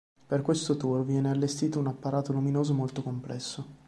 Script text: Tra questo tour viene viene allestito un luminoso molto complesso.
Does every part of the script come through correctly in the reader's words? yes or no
no